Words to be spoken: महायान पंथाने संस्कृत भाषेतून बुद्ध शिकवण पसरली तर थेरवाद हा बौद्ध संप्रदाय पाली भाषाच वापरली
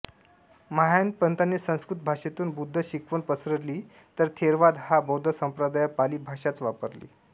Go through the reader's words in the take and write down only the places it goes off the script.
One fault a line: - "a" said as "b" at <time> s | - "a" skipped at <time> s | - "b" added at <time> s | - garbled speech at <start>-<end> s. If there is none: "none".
none